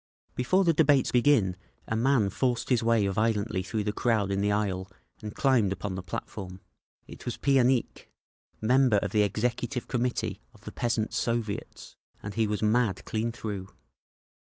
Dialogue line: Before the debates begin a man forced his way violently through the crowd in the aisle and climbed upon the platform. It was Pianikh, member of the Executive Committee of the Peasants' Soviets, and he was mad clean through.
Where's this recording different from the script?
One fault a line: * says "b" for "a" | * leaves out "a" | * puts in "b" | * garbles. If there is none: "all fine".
all fine